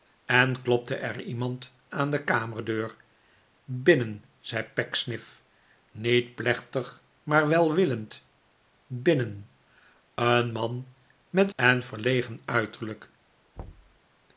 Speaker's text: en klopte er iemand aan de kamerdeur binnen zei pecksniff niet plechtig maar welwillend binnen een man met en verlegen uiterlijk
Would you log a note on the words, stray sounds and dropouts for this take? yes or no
yes